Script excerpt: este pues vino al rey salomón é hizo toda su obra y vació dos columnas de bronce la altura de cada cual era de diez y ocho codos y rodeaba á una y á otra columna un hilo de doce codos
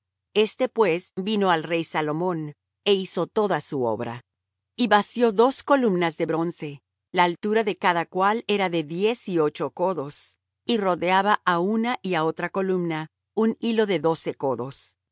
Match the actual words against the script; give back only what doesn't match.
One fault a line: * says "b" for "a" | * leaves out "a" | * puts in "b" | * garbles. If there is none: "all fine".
all fine